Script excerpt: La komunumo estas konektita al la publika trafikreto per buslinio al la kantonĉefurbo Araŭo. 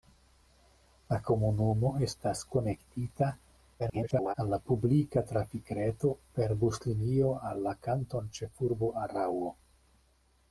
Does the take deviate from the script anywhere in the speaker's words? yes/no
yes